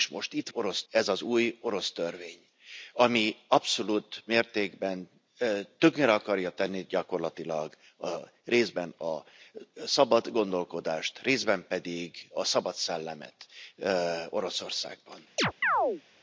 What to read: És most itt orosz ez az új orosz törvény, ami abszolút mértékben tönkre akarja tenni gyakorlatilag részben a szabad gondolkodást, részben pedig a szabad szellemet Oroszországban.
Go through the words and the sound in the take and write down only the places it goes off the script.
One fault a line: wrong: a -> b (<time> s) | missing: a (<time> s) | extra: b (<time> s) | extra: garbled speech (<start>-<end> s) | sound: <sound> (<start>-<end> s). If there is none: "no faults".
sound: chirp (15.4-16.0 s)